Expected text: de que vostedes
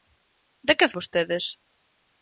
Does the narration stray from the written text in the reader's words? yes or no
no